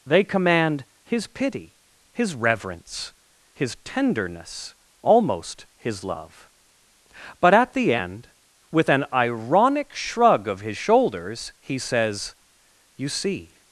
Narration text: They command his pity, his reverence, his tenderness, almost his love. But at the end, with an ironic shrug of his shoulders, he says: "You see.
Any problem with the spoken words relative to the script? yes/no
no